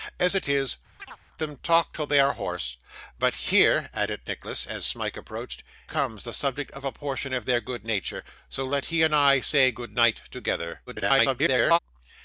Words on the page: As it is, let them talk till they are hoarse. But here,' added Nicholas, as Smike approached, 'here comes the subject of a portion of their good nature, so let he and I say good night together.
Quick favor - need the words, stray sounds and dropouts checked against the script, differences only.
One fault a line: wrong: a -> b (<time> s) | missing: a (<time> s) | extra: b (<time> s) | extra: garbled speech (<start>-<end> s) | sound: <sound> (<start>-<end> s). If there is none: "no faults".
missing: let (0.8 s)
sound: chirp (1.0-1.2 s)
missing: here (5.6 s)
extra: garbled speech (10.9-11.8 s)